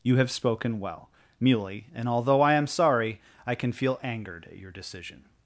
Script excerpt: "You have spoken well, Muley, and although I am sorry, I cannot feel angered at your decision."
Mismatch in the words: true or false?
true